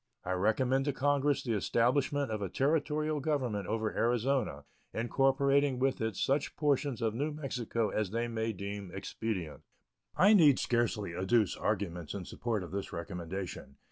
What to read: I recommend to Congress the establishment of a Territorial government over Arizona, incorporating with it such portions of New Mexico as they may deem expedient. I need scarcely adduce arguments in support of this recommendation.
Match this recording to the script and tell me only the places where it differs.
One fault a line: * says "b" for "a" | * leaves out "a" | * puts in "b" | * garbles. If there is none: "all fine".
all fine